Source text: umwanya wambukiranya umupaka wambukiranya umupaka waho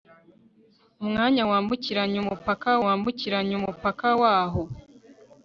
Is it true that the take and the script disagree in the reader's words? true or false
false